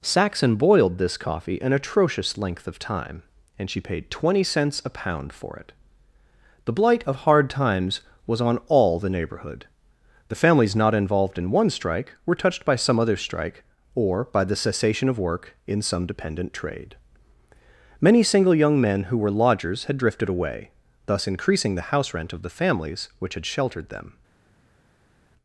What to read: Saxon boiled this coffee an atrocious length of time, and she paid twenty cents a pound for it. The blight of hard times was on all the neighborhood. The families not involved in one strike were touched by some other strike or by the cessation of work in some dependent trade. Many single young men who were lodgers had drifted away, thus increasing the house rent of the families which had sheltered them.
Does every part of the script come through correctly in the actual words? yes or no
yes